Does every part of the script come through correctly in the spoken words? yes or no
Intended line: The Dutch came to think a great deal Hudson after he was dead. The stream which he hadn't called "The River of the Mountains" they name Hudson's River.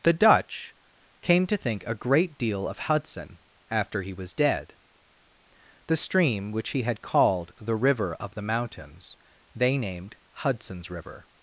no